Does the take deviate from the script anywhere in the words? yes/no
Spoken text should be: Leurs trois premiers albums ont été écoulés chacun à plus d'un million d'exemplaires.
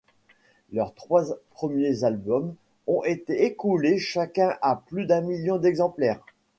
no